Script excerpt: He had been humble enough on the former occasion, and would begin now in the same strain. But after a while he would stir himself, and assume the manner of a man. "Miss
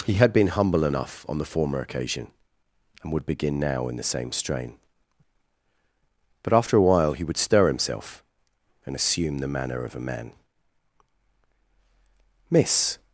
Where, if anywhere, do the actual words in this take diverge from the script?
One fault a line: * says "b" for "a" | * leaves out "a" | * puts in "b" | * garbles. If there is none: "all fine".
all fine